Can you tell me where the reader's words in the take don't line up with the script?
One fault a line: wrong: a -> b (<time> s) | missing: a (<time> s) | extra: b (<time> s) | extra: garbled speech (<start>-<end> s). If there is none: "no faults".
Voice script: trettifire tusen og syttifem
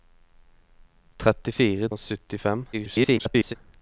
missing: tusen (1.9 s)
extra: garbled speech (2.7-3.6 s)